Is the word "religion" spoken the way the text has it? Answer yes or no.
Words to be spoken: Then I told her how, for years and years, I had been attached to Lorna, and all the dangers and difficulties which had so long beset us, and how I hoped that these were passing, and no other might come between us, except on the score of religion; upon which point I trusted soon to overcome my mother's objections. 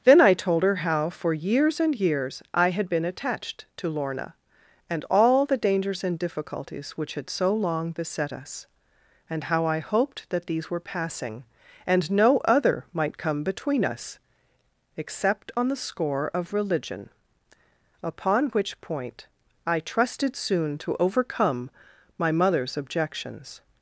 yes